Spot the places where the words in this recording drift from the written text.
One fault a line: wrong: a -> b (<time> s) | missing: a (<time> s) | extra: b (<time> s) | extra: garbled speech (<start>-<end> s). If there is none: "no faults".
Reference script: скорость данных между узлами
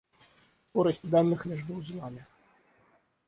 no faults